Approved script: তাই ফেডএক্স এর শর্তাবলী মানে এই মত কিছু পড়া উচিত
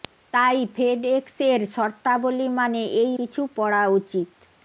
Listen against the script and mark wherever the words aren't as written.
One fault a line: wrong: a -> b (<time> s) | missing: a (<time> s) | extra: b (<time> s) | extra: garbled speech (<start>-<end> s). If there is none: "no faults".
missing: মত (3.1 s)